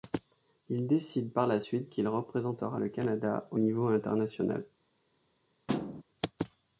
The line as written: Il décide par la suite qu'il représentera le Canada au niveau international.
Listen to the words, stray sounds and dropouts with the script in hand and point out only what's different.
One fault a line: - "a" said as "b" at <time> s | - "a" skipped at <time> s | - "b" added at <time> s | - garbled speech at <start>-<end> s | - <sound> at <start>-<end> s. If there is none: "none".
- thud at 5.7-6.0 s